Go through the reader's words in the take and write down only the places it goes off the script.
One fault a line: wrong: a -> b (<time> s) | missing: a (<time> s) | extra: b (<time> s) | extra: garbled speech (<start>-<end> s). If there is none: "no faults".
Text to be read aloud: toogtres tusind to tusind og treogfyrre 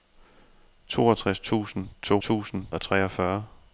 no faults